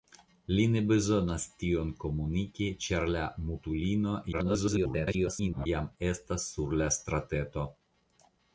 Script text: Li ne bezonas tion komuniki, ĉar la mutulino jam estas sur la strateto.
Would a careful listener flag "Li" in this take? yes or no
no